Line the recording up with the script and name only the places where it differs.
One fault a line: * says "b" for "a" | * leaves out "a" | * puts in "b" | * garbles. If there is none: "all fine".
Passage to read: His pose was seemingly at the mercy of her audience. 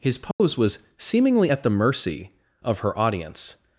all fine